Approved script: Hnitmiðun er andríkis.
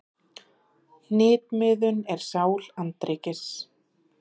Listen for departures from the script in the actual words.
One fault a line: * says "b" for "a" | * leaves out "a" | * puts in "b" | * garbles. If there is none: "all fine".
* puts in "sál"